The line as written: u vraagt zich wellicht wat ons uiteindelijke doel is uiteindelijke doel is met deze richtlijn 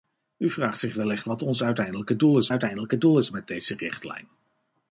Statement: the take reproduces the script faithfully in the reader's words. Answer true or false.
true